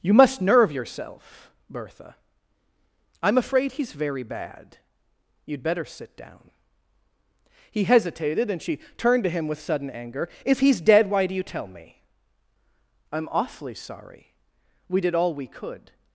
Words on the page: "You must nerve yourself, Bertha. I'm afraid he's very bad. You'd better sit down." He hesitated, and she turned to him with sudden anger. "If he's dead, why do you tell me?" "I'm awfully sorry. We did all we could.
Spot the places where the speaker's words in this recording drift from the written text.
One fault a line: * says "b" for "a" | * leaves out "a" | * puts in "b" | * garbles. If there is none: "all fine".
all fine